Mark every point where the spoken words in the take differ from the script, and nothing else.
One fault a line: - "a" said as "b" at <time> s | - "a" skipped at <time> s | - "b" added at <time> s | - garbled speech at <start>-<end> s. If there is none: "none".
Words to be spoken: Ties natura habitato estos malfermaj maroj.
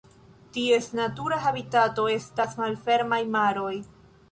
- "estos" said as "estas" at 2.1 s